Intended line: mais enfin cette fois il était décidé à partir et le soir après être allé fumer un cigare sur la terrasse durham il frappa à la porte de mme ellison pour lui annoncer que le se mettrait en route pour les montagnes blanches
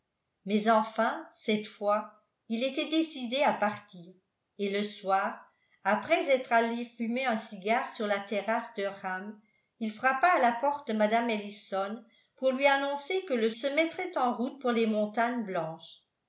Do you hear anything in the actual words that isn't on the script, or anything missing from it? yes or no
no